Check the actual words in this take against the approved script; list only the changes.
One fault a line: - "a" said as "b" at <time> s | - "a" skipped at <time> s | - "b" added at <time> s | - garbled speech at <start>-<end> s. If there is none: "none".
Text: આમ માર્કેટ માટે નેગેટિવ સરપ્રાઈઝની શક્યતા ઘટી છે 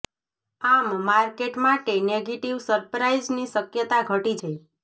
none